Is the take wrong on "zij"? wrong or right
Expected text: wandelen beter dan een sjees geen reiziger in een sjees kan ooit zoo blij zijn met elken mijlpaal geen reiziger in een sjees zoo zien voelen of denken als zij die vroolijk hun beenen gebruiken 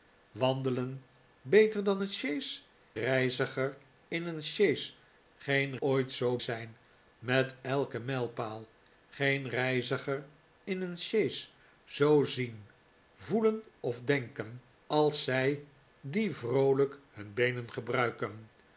right